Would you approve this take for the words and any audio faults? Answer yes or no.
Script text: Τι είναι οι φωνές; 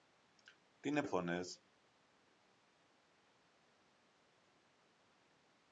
yes